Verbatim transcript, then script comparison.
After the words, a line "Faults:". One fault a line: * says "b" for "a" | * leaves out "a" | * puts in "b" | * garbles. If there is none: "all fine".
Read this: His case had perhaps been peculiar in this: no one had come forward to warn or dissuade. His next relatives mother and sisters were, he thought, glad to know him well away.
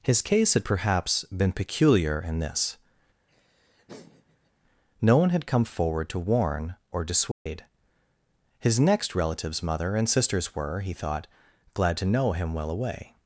His case had perhaps been peculiar in this: no one had come forward to warn or dissuade. His next relatives mother and sisters were, he thought, glad to know him well away.
Faults:
all fine